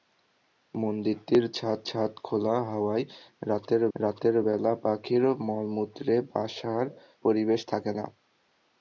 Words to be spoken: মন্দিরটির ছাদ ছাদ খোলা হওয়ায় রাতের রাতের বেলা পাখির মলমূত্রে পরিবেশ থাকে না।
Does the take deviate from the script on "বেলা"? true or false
false